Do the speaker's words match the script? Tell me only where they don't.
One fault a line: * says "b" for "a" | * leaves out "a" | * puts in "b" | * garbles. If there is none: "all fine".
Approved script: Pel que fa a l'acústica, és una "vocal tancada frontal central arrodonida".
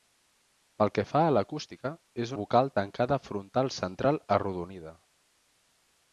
* leaves out "una"